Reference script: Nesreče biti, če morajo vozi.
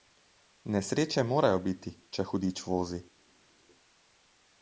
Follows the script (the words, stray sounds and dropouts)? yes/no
no